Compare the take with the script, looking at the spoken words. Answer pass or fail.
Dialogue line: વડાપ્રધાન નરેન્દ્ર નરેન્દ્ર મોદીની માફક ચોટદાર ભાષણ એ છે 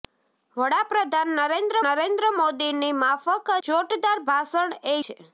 pass